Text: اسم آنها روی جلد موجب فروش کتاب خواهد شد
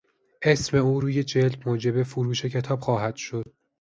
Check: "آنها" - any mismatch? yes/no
yes